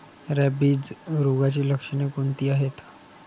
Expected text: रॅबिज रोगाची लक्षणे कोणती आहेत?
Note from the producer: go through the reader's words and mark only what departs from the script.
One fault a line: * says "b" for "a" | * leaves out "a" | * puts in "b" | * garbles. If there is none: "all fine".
all fine